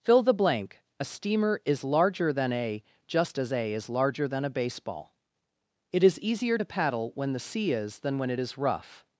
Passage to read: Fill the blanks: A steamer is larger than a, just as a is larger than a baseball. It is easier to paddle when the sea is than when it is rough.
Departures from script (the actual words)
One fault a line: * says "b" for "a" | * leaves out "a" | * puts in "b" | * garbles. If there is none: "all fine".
* says "blank" for "blanks"